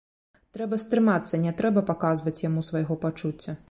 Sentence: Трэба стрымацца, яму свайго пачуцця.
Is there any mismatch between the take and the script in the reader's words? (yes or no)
yes